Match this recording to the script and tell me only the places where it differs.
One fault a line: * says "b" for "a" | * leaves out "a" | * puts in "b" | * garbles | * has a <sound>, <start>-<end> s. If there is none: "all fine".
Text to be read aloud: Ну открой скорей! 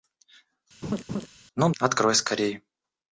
* has a laugh, 0.8-1.3 s